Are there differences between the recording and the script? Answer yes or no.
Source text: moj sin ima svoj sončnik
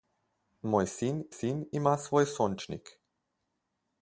yes